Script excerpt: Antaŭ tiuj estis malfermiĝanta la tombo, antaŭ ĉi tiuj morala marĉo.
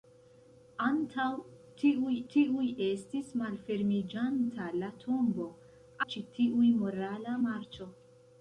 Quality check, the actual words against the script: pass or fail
fail